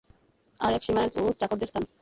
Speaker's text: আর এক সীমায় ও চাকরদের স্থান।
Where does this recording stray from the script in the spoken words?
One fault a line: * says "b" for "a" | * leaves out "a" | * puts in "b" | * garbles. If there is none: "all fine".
all fine